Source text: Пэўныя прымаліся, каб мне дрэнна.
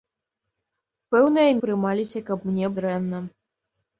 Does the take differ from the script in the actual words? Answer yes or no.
no